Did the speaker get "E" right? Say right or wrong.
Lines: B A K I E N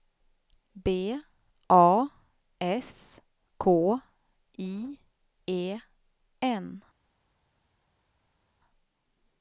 right